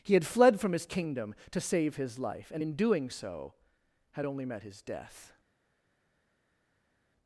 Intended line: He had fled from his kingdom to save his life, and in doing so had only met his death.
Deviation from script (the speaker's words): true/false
false